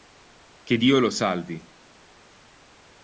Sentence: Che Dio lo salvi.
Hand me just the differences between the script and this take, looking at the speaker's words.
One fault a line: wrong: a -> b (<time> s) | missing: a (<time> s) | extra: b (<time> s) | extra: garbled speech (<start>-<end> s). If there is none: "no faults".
no faults